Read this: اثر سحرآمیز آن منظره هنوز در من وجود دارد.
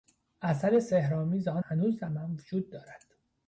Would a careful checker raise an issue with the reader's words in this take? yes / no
yes